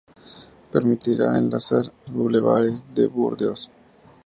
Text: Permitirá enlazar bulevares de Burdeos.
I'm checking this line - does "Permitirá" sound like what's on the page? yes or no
yes